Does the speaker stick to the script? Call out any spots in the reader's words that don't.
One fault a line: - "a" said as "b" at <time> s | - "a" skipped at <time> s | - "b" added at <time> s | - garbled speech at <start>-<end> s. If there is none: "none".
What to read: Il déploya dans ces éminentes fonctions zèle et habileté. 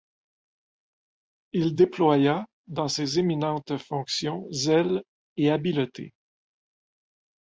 none